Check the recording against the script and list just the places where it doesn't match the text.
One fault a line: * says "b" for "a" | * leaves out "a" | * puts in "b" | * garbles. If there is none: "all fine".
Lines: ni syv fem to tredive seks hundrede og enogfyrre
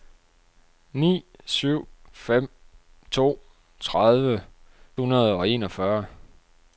* leaves out "seks"